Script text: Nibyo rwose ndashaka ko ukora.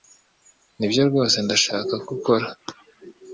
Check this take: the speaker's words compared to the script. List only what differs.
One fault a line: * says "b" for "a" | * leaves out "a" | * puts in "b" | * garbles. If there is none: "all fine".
all fine